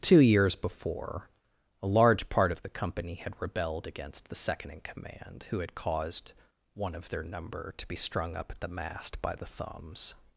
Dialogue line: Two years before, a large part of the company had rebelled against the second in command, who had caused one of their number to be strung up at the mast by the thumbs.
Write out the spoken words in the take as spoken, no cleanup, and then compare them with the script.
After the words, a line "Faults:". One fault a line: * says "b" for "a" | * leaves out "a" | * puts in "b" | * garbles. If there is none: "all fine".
Two years before, a large part of the company had rebelled against the second in command, who had caused one of their number to be strung up at the mast by the thumbs.
Faults:
all fine